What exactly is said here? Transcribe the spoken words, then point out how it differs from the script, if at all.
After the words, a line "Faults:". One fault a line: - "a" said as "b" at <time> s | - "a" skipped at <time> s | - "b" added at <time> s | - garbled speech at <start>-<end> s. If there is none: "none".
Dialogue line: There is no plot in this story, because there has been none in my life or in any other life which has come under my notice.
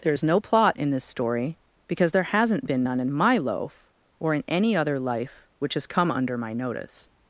There is no plot in this story, because there hasn't been none in my loaf or in any other life which has come under my notice.
Faults:
- "has" said as "hasn't" at 2.2 s
- "life" said as "loaf" at 3.4 s